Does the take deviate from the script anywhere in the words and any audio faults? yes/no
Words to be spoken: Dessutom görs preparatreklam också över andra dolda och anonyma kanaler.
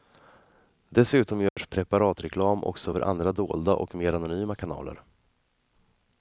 yes